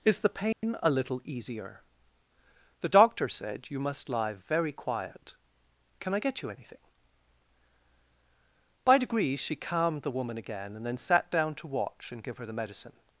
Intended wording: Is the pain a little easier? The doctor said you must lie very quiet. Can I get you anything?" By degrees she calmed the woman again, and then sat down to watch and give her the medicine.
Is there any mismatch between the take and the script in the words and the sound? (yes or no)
yes